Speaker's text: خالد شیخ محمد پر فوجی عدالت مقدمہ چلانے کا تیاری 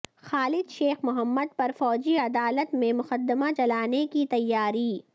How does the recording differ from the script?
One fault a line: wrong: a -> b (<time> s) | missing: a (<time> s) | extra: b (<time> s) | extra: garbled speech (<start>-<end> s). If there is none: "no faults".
extra: میں (2.7 s)
wrong: کا -> کی (4.1 s)